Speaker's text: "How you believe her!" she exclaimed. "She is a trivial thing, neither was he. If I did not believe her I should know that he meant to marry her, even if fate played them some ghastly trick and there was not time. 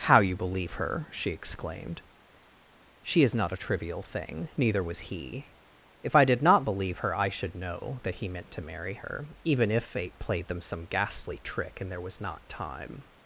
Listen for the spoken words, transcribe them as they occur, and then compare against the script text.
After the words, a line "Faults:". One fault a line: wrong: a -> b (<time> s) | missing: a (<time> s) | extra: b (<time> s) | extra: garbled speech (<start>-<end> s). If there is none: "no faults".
"How you believe her!" she exclaimed. "She is not a trivial thing, neither was he. If I did not believe her I should know that he meant to marry her, even if fate played them some ghastly trick and there was not time.
Faults:
extra: not (3.3 s)